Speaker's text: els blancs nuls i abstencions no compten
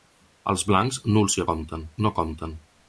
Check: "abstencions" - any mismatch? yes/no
yes